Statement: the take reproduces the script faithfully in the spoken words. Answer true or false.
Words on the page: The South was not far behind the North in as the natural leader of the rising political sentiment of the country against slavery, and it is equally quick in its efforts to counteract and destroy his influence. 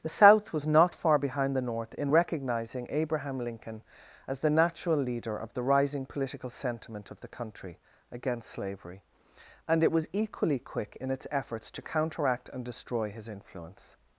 false